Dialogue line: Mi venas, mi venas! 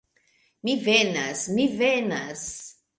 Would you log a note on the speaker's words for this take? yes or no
no